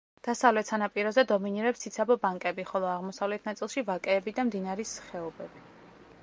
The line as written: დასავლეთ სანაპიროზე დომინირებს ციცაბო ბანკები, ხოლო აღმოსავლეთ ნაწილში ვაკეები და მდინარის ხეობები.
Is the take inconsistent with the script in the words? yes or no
no